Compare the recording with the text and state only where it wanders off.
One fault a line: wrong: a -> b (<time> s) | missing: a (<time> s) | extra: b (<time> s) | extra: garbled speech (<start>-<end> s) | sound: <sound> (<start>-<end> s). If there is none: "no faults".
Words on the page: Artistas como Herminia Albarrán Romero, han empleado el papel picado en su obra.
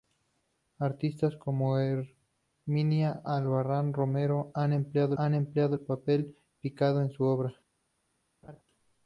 extra: han empleado (5.2 s)
sound: laugh (8.4-8.6 s)